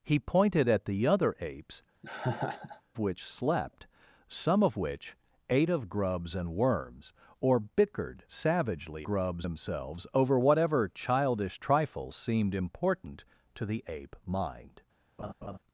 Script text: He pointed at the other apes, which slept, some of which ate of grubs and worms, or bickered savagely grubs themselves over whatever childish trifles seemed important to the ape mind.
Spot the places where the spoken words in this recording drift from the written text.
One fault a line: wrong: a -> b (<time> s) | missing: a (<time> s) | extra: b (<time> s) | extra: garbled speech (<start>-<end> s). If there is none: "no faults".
no faults